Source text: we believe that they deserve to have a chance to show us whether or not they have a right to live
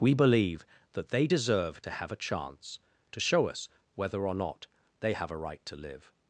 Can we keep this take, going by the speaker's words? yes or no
yes